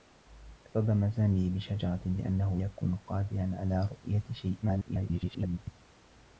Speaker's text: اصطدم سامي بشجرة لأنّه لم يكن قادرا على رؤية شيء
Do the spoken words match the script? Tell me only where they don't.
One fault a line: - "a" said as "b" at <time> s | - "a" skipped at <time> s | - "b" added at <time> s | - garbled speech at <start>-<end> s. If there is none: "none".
- "لم" skipped at 2.6 s
- garbled speech at 4.6-5.6 s